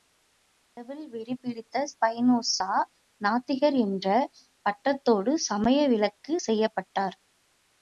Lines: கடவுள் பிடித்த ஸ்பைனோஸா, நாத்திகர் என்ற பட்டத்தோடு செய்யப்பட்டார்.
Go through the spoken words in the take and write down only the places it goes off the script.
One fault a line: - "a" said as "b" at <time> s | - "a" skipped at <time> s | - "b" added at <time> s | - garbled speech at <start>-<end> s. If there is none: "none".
- "வெறி" added at 1.1 s
- "சமய விலக்கு" added at 5.5 s